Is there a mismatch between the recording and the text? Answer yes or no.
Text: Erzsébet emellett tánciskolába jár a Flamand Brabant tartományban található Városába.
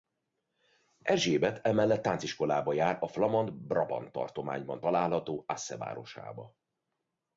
yes